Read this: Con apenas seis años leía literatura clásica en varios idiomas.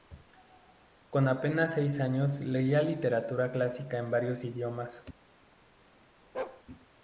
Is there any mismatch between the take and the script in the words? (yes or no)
no